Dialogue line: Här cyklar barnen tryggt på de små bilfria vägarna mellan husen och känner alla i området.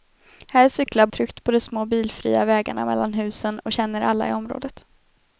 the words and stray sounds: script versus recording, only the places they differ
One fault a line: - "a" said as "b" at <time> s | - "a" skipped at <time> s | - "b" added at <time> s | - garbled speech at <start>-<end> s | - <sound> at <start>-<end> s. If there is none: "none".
- "barnen" skipped at 1.1 s